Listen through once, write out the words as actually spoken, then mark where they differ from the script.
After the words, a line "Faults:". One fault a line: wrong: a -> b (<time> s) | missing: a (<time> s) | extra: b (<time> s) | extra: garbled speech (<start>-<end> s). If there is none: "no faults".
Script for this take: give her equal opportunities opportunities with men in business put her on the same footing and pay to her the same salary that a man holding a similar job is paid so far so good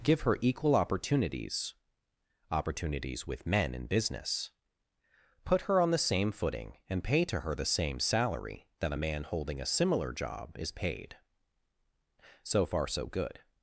give her equal opportunities opportunities with men in business put her on the same footing and pay to her the same salary that a man holding a similar job is paid so far so good
Faults:
no faults